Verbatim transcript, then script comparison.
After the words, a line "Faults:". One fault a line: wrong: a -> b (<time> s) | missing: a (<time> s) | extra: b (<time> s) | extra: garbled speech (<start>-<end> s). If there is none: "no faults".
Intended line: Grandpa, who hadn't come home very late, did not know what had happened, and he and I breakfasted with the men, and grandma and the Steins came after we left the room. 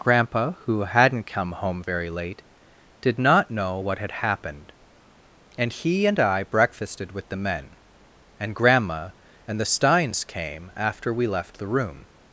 Grandpa, who hadn't come home very late, did not know what had happened, and he and I breakfasted with the men, and grandma and the Steins came after we left the room.
Faults:
no faults